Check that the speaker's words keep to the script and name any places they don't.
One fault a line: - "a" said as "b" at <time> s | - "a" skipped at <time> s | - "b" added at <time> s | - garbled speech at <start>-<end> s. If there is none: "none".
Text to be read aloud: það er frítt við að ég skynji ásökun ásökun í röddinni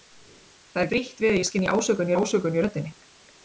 none